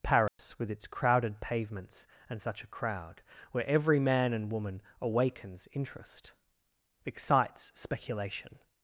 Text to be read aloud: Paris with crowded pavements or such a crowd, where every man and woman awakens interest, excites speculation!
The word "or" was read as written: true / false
false